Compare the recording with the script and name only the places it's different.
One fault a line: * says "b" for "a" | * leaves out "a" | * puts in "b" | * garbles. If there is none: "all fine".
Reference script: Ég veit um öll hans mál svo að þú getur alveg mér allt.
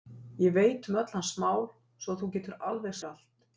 all fine